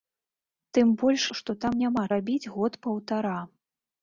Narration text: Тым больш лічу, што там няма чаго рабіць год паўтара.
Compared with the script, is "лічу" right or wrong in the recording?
wrong